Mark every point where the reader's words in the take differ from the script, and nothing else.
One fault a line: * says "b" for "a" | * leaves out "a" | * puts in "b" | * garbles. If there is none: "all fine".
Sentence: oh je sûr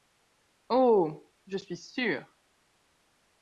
* puts in "suis"